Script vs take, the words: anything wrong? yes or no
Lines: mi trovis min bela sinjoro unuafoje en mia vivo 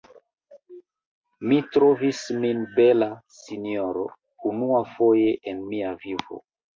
no